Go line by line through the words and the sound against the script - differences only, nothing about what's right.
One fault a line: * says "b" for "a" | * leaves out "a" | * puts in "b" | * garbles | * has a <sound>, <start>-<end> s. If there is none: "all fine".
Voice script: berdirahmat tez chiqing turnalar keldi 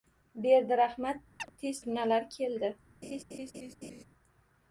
* has a chirp, 1.4-1.5 s
* leaves out "chiqing"
* has a laugh, 3.0-4.0 s